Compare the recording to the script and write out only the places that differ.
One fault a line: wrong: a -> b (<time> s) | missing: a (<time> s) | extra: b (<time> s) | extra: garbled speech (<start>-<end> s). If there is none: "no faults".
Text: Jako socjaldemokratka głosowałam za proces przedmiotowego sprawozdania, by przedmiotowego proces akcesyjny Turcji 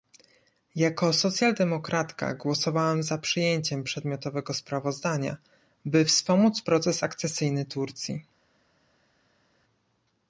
wrong: proces -> przyjęciem (3.1 s)
wrong: przedmiotowego -> wspomóc (6.0 s)